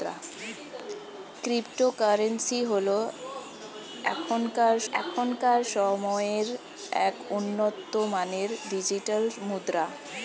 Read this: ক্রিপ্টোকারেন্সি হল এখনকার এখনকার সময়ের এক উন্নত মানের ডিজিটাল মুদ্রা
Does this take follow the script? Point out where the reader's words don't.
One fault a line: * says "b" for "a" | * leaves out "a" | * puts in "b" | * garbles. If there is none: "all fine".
all fine